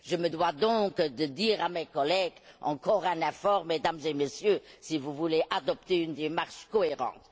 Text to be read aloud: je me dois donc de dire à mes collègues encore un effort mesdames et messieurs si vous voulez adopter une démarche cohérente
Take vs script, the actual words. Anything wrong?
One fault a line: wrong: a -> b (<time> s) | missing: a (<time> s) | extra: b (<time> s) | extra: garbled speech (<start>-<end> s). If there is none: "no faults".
no faults